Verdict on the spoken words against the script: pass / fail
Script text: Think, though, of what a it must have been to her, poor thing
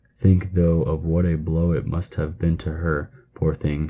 fail